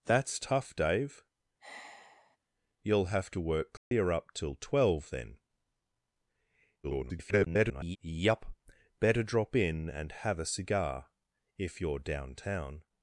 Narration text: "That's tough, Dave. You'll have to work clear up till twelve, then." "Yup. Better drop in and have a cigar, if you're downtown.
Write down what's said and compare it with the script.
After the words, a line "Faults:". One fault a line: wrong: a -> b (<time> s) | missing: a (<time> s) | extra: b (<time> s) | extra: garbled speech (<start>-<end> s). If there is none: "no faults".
"That's tough, Dave. You'll have to work clear up till twelve, then." [garbled] "Yup. Better drop in and have a cigar, if you're downtown.
Faults:
extra: garbled speech (6.8-8.0 s)